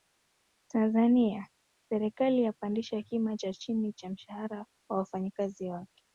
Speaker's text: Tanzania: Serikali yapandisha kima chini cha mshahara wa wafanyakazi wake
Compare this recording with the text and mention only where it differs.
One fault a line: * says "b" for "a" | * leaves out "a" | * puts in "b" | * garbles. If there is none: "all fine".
* puts in "cha"